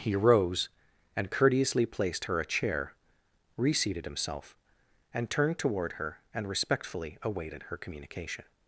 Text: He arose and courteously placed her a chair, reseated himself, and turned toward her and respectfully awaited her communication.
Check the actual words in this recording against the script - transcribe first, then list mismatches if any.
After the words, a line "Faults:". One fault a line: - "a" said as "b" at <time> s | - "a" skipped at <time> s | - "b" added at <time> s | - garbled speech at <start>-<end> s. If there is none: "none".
He rose and courteously placed her a chair, reseated himself, and turned toward her and respectfully awaited her communication.
Faults:
- "arose" said as "rose" at 0.1 s